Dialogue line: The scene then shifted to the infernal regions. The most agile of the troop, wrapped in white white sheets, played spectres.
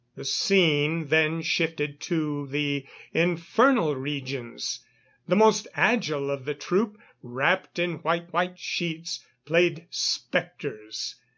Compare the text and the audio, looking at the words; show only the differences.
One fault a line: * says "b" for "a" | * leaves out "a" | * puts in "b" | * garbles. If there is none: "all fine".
all fine